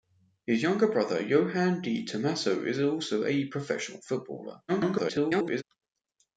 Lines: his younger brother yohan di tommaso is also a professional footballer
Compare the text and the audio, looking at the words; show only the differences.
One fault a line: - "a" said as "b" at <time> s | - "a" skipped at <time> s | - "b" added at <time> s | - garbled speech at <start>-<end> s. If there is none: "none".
- garbled speech at 4.7-5.6 s